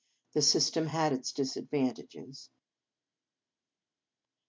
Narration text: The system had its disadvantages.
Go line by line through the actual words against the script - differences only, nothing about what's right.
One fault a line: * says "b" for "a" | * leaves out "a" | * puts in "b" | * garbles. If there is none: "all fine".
all fine